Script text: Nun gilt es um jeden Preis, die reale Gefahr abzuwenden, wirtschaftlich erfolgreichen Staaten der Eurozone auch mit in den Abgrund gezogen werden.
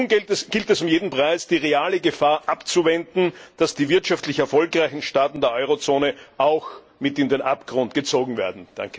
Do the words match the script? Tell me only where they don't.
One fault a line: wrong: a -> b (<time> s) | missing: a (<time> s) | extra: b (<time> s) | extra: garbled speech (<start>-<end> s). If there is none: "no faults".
extra: dass die (3.6 s)